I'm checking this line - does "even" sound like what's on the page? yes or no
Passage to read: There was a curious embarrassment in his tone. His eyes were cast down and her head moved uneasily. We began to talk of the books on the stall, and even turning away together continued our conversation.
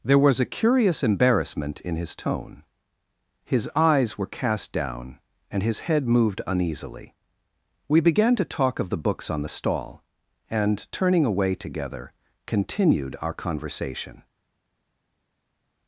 no